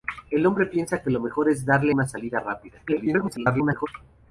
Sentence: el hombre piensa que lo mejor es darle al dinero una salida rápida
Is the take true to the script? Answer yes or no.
no